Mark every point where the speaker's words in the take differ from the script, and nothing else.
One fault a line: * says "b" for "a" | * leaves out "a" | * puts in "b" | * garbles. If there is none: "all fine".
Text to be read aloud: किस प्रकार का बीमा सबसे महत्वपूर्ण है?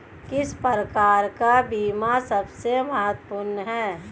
all fine